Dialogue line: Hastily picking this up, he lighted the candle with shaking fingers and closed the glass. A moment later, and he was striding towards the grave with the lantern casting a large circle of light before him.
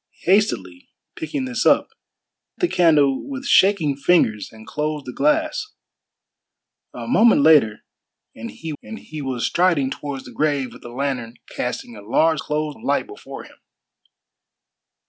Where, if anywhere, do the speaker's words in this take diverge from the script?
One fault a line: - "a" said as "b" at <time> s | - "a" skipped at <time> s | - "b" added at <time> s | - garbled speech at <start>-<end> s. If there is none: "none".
- "he lighted" skipped at 1.9 s
- "and he" added at 8.8 s
- "circle" said as "closed" at 12.4 s